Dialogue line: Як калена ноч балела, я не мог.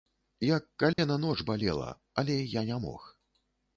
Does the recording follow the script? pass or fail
fail